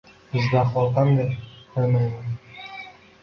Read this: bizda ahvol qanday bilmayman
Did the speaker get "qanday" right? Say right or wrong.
right